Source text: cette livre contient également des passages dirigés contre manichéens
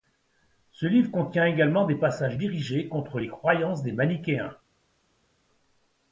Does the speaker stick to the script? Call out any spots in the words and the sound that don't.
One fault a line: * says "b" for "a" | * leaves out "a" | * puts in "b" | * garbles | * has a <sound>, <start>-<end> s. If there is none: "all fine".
* says "ce" for "cette"
* puts in "les croyances des"